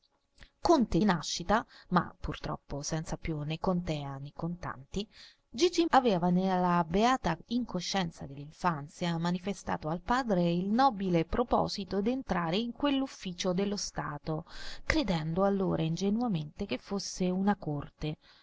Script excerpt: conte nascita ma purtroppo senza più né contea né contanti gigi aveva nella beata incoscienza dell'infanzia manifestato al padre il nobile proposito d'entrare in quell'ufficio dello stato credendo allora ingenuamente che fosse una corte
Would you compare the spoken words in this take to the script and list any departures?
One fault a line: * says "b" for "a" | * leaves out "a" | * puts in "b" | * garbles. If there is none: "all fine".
all fine